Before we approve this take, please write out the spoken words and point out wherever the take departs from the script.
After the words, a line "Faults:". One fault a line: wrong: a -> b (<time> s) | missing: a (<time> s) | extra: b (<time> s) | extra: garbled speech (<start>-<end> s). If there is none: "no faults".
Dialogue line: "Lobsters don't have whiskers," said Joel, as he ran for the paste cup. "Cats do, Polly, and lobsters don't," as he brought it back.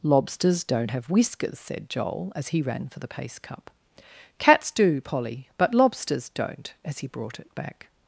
"Lobsters don't have whiskers," said Joel, as he ran for the paste cup. "Cats do, Polly, but lobsters don't," as he brought it back.
Faults:
wrong: and -> but (5.6 s)